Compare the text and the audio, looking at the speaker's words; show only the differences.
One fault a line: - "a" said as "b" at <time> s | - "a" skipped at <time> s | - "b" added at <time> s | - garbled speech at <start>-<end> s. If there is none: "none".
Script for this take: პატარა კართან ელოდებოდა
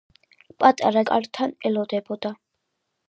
none